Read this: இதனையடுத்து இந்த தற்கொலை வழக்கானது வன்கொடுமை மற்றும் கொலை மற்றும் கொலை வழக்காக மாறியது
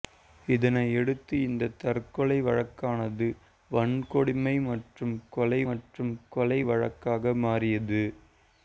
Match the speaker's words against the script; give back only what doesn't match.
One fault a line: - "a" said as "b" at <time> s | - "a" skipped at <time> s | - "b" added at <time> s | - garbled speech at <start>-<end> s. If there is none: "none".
none